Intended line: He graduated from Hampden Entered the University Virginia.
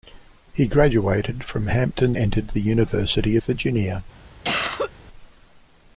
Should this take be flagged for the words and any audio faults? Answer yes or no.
yes